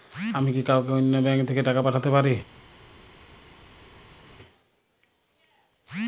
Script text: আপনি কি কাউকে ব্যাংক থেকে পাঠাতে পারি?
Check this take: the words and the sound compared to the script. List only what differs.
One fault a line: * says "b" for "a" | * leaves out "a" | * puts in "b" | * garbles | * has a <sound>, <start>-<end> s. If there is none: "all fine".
* says "আমি" for "আপনি"
* puts in "অন্য"
* puts in "টাকা"